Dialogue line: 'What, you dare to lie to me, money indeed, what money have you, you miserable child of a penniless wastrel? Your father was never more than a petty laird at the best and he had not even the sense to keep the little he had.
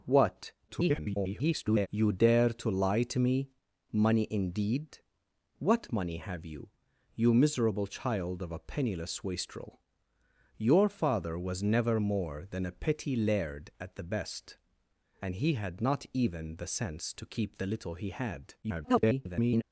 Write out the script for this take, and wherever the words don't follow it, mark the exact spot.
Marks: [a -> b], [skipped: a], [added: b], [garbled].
'What, [garbled] you dare to lie to me, money indeed, what money have you, you miserable child of a penniless wastrel? Your father was never more than a petty laird at the best and he had not even the sense to keep the little he had. [garbled]